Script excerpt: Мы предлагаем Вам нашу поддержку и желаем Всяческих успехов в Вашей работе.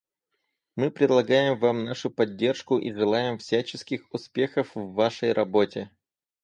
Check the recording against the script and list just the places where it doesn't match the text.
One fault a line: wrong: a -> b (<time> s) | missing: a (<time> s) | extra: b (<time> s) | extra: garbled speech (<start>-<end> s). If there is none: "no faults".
no faults